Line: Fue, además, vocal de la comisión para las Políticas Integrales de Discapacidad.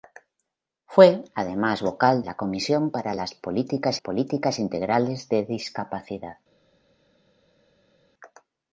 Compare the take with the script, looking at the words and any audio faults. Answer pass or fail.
fail